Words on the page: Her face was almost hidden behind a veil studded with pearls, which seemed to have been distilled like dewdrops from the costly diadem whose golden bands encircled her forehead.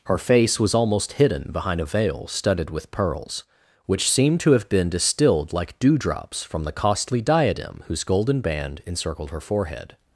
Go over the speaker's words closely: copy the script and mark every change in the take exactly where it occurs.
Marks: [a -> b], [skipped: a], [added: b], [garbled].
Her face was almost hidden behind a veil studded with pearls, which seemed to have been distilled like dewdrops from the costly diadem whose golden [bands -> band] encircled her forehead.